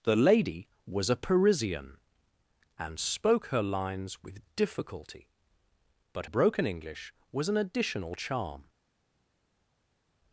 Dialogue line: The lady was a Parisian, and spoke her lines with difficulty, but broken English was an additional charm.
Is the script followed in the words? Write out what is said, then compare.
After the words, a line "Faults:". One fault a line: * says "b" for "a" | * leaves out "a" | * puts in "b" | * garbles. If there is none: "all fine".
The lady was a Parisian, and spoke her lines with difficulty, but broken English was an additional charm.
Faults:
all fine